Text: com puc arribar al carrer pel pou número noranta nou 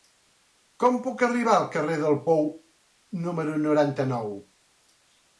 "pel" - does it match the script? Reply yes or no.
no